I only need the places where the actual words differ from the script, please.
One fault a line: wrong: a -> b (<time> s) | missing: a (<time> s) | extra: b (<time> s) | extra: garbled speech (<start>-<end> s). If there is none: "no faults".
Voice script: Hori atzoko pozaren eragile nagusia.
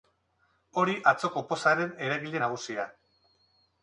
no faults